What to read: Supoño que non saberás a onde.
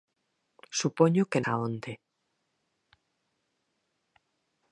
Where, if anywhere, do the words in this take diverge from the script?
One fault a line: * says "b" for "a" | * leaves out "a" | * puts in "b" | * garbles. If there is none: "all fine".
* leaves out "non saberás"